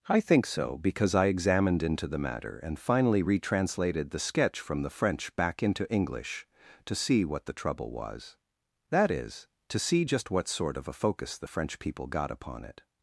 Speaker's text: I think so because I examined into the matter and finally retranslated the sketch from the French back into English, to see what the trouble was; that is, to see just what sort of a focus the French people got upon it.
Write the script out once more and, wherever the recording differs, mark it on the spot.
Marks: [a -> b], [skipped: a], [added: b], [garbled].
I think so because I examined into the matter and finally retranslated the sketch from the French back into English, to see what the trouble was; that is, to see just what sort of a focus the French people got upon it.